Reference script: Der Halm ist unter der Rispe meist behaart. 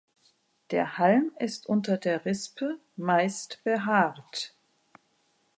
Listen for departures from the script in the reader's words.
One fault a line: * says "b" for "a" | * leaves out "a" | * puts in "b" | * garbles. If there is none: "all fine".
all fine